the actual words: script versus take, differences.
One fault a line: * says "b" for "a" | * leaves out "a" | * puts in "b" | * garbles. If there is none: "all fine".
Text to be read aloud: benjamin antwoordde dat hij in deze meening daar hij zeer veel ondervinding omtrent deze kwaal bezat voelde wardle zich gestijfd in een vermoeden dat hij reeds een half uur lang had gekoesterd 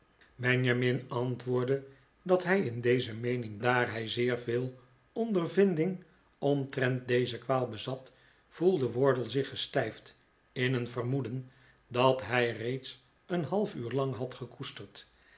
all fine